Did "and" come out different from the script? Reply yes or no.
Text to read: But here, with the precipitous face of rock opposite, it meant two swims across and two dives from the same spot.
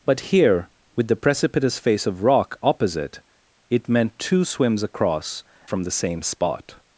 yes